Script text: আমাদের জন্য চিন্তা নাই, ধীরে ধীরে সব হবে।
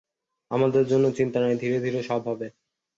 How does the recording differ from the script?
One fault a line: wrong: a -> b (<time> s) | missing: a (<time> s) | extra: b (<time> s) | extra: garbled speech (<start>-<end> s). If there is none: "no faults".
no faults